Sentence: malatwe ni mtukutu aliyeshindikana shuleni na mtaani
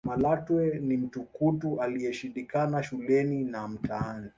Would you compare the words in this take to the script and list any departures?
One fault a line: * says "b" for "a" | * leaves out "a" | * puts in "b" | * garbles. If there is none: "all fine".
all fine